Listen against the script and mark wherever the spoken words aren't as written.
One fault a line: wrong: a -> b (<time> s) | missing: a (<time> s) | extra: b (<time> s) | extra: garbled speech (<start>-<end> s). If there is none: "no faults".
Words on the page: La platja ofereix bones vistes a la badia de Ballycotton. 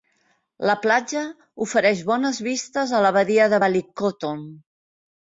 no faults